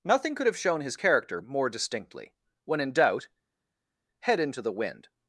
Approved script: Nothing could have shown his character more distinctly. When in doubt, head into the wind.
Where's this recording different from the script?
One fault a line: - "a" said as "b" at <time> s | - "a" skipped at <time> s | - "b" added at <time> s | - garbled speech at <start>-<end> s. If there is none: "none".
none